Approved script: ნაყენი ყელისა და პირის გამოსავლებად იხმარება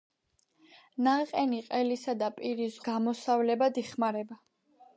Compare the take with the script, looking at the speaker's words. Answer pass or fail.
pass